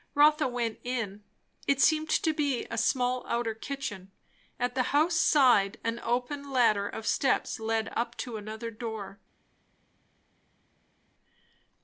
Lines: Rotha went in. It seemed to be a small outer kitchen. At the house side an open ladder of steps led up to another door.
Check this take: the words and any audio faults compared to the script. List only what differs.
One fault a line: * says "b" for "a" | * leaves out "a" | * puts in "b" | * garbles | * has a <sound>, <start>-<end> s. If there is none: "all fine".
all fine